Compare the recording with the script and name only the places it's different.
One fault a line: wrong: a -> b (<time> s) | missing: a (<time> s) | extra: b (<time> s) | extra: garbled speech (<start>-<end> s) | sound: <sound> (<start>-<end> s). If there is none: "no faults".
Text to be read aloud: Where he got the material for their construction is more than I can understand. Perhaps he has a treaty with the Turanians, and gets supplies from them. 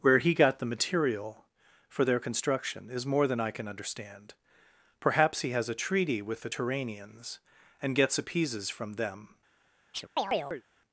wrong: supplies -> appeases (8.2 s)
sound: chirp (9.9-10.6 s)